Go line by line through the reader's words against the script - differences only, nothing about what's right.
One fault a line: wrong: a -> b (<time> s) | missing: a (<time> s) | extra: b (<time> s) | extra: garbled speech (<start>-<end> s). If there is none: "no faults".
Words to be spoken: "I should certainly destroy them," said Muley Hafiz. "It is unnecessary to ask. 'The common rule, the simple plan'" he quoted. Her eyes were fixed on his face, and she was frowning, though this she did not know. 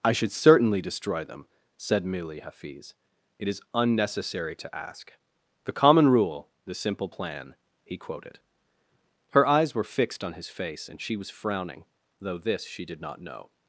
no faults